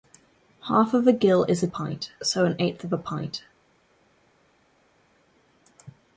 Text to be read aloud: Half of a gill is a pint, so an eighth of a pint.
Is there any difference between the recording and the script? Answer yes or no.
no